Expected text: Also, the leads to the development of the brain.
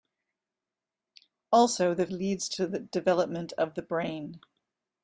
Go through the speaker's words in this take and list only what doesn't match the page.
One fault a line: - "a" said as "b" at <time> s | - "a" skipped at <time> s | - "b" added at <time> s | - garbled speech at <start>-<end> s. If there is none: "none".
none